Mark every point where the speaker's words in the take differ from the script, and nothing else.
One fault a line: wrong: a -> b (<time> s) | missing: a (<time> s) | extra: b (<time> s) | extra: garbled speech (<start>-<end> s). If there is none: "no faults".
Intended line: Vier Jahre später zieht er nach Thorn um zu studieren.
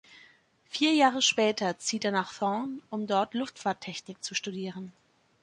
extra: dort Luftfahrttechnik (3.0 s)